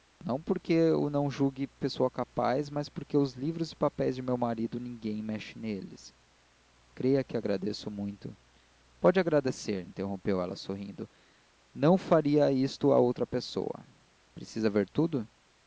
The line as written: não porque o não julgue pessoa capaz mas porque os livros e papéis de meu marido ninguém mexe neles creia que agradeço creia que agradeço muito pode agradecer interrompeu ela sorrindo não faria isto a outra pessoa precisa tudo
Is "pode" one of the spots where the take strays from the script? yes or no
no